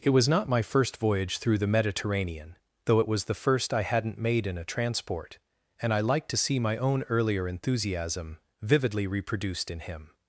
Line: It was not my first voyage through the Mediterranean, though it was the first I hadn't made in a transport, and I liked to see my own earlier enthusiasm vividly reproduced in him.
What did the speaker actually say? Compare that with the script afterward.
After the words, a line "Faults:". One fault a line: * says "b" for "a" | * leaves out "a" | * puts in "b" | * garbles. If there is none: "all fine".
It was not my first voyage through the Mediterranean, though it was the first I hadn't made in a transport, and I liked to see my own earlier enthusiasm vividly reproduced in him.
Faults:
all fine